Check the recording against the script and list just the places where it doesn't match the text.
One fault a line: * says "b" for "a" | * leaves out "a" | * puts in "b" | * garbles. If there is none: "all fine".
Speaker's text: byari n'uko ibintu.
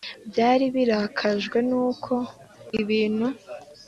* puts in "birakajwe"